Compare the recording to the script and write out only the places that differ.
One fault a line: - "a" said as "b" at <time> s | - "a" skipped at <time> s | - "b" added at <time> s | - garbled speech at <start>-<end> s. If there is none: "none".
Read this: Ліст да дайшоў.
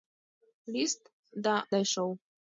none